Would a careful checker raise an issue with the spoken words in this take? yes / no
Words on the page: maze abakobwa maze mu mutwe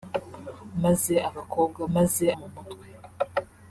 no